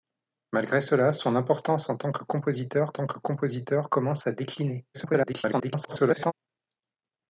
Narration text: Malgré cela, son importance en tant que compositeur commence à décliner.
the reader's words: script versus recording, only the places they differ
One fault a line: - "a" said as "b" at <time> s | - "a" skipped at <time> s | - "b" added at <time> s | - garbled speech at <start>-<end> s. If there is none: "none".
- "tant que compositeur" added at 2.9 s
- garbled speech at 4.9-6.3 s